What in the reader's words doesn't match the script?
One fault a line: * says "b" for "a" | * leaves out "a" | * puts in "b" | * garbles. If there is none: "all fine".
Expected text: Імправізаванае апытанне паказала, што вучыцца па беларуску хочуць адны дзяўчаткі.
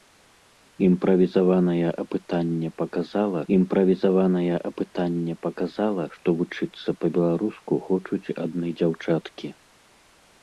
* puts in "імправізаванае апытанне паказала"